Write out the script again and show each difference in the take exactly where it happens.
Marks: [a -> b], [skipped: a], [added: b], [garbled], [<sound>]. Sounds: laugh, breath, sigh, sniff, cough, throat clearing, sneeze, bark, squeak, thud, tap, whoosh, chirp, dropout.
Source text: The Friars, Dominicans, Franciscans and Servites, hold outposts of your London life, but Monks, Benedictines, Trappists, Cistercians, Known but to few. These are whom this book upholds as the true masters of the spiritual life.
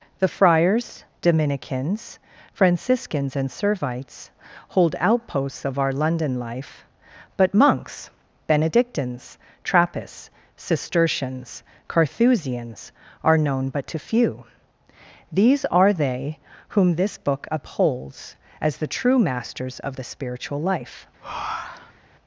The Friars, Dominicans, Franciscans and Servites, hold outposts of [your -> our] London life, but Monks, Benedictines, Trappists, Cistercians, [added: Carthusians are] Known but to few. These are [added: they] whom this book upholds as the true masters of the spiritual life. [breath]